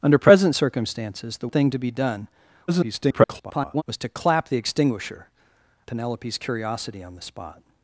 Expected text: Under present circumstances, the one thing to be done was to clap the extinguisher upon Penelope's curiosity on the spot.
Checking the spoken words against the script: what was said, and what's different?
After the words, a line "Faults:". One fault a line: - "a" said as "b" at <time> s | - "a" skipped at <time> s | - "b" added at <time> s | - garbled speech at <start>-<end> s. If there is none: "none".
Under present circumstances, the thing to be done [garbled] was to clap the extinguisher Penelope's curiosity on the spot.
Faults:
- "one" skipped at 1.5 s
- garbled speech at 2.7-3.8 s
- "upon" skipped at 5.3 s